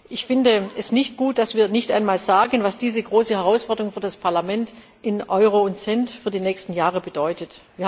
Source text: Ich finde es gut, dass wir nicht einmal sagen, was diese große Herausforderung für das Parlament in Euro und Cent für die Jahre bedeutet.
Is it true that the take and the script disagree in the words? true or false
true